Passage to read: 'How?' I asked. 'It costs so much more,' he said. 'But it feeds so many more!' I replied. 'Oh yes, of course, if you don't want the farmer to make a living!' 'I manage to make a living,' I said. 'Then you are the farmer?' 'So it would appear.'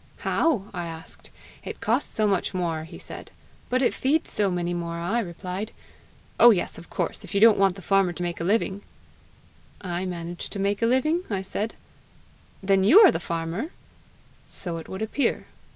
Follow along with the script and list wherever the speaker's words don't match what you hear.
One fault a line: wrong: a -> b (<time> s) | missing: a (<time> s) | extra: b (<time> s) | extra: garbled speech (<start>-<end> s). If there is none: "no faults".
no faults